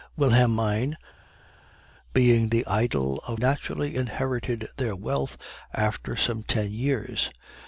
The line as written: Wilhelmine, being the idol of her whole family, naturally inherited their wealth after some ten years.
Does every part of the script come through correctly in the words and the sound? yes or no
no